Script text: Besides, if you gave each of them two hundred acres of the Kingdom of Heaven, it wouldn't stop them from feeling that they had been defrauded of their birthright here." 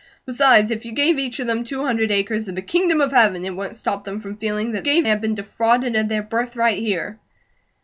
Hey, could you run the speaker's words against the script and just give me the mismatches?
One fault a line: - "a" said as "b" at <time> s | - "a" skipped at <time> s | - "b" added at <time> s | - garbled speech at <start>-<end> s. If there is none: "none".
- "they" said as "gave" at 4.8 s